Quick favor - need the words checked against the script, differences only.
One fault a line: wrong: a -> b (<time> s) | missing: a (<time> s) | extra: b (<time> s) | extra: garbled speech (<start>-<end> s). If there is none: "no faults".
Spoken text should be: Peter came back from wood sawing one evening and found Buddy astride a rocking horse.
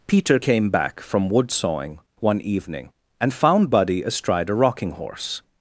no faults